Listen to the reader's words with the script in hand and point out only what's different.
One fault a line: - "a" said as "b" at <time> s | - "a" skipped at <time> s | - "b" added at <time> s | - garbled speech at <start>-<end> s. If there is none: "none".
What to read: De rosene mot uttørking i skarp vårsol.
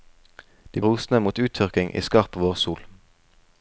none